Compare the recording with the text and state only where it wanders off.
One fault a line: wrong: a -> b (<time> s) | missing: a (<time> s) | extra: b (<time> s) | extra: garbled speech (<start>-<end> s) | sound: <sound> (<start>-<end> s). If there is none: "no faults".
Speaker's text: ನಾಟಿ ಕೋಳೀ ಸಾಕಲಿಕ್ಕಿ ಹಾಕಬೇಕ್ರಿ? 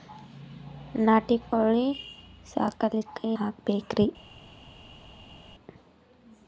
no faults